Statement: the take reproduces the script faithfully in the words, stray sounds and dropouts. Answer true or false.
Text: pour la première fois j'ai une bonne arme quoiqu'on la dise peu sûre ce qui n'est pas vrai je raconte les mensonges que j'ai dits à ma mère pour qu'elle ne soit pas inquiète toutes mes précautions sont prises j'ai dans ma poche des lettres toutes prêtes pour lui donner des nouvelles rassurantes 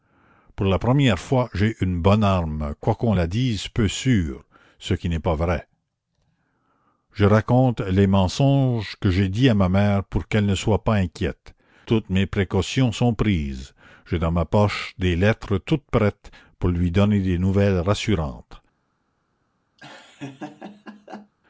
false